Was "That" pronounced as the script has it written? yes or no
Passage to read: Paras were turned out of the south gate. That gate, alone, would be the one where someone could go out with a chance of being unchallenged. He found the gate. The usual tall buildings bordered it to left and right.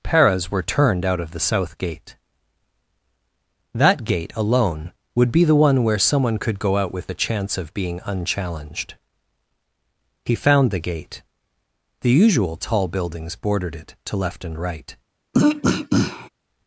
yes